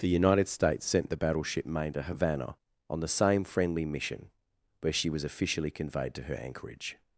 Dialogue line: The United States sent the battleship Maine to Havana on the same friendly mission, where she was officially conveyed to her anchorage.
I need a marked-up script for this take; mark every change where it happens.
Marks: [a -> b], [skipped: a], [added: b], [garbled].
The United States sent the battleship Maine to Havana on the same friendly mission, where she was officially conveyed to her anchorage.